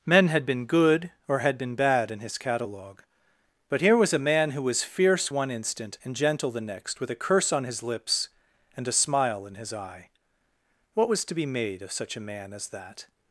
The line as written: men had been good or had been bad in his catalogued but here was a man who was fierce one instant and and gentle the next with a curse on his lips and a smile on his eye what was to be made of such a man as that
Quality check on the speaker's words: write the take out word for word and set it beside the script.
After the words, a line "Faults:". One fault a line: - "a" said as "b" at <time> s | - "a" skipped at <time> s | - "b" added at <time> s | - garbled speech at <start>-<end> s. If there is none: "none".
men had been good or had been bad in his catalogue but here was a man who was fierce one instant and gentle the next with a curse on his lips and a smile in his eye what was to be made of such a man as that
Faults:
- "catalogued" said as "catalogue" at 2.4 s
- "and" skipped at 6.1 s
- "on" said as "in" at 9.4 s